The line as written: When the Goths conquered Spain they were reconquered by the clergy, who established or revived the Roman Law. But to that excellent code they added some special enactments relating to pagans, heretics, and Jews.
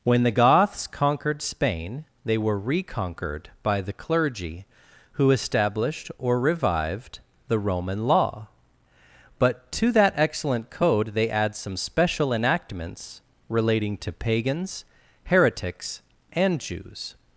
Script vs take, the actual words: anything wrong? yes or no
yes